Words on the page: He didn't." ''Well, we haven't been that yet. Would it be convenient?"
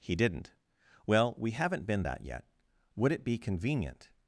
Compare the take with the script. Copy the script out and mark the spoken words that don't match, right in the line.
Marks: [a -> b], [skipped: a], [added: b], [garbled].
He didn't." ''Well, we haven't been that yet. Would it be convenient?"